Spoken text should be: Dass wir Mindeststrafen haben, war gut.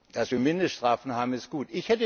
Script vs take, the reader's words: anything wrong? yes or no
yes